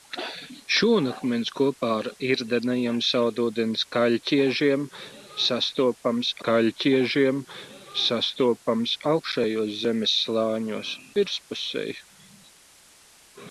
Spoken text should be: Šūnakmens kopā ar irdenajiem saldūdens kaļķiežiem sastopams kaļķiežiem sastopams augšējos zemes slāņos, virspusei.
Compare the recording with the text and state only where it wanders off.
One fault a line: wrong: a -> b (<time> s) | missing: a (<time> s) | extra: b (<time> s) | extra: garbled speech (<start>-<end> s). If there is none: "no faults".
no faults